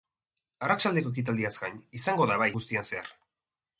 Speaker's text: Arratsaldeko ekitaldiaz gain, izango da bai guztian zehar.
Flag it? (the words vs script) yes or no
no